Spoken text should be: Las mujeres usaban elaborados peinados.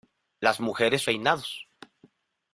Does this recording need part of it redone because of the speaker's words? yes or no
yes